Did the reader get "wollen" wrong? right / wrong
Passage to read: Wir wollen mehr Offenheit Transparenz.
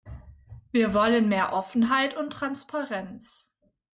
right